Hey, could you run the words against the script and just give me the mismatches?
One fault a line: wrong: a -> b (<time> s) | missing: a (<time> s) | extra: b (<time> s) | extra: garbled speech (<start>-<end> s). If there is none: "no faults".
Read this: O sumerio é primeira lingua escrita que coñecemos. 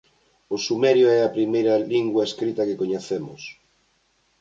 extra: a (1.2 s)